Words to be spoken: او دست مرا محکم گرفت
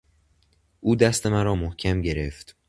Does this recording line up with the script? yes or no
yes